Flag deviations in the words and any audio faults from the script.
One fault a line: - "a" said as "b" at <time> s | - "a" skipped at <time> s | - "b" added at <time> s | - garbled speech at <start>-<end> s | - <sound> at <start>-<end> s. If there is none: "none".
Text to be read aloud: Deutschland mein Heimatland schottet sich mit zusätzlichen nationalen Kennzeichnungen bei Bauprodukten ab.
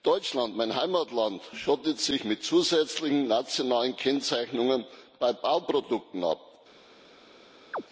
- chirp at 7.7-7.8 s